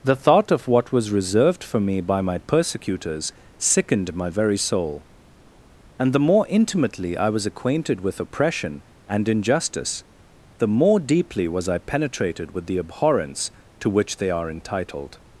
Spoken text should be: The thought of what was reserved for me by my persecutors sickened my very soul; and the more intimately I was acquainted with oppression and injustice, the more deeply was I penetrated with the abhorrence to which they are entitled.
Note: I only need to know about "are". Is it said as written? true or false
true